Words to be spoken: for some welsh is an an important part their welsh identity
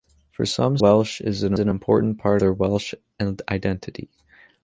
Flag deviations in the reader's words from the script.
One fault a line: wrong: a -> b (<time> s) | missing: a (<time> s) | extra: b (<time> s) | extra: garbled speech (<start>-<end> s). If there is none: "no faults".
no faults